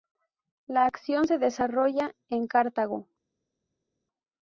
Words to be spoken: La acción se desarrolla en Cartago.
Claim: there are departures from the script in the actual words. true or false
false